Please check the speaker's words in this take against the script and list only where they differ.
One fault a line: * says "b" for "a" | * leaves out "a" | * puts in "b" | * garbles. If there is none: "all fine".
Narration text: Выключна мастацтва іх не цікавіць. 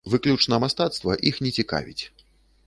all fine